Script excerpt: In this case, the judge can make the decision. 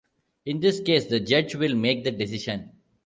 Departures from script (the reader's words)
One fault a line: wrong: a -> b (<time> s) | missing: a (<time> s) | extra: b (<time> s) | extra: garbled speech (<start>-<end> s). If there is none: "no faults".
wrong: can -> will (1.6 s)